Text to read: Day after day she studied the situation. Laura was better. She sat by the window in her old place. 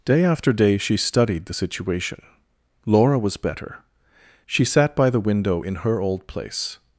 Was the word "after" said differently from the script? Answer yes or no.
no